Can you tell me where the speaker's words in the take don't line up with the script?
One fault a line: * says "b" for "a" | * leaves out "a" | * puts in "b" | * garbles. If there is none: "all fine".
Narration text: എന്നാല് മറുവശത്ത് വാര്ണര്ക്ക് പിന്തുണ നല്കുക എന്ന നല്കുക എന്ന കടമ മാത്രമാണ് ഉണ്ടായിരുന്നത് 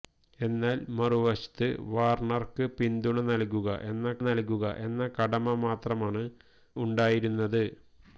all fine